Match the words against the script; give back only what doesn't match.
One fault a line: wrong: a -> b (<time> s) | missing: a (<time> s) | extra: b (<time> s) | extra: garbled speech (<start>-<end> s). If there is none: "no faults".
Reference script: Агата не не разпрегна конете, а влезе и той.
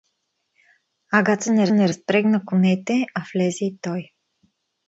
no faults